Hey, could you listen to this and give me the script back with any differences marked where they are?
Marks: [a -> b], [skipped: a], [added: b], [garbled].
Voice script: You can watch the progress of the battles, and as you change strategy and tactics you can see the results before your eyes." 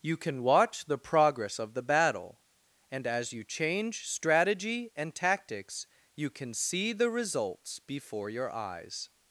You can watch the progress of the [battles, -> battle] and as you change strategy and tactics you can see the results before your eyes."